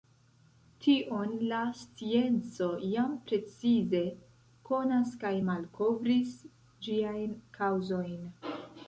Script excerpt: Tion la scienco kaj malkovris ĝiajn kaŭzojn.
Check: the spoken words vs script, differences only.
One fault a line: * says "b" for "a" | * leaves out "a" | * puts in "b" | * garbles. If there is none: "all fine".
* puts in "jam precize konas"